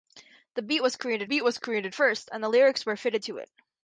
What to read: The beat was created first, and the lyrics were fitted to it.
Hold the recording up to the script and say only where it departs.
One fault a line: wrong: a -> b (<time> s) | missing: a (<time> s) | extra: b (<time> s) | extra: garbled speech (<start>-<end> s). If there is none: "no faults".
extra: beat was created (1.2 s)